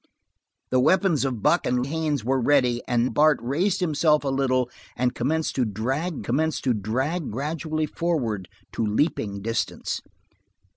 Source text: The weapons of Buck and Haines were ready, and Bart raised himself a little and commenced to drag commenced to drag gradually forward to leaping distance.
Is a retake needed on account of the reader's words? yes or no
no